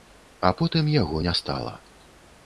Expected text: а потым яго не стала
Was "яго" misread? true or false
false